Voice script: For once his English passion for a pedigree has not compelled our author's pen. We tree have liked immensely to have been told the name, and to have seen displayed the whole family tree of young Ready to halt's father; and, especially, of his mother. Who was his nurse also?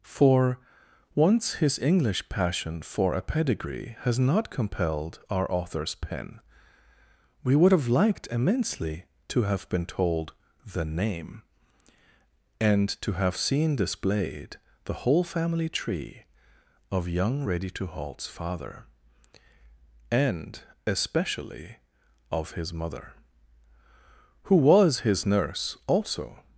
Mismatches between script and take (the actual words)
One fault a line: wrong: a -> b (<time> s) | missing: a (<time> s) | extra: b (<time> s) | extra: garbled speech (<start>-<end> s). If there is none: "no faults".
wrong: tree -> would (7.5 s)